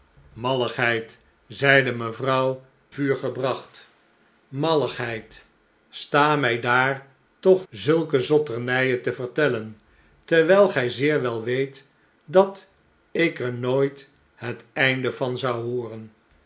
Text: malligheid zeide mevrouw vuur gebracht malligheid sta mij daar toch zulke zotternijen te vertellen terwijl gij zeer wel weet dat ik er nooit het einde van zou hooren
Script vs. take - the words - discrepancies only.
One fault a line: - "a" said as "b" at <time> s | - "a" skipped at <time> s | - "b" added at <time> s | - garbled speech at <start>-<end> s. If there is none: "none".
none